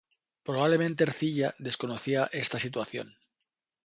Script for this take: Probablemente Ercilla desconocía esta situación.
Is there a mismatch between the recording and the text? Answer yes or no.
no